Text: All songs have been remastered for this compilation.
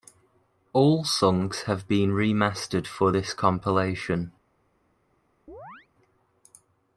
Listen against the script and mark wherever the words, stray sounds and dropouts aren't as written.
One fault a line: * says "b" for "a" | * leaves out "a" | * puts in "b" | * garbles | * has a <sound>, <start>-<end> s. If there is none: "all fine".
* has a chirp, 5.5-5.9 s